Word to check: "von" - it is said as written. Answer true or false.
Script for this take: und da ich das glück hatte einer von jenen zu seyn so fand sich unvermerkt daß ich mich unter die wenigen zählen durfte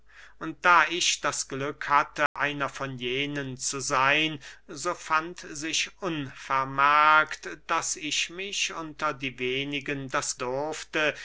true